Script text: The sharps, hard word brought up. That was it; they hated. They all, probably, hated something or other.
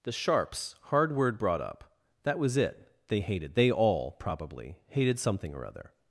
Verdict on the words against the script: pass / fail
pass